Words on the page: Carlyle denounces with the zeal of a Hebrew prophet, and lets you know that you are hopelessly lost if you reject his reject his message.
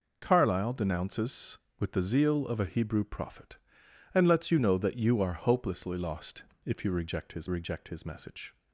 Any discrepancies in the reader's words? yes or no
no